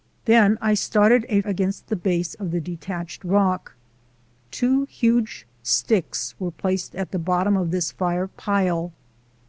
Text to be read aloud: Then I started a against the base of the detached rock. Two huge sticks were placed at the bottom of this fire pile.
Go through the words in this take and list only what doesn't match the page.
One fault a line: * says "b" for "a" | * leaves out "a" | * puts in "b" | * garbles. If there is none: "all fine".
all fine